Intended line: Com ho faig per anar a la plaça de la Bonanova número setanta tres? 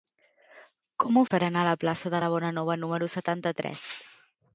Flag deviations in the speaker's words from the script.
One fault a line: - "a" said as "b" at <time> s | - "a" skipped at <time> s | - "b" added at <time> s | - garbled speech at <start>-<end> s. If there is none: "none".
- "faig" skipped at 1.2 s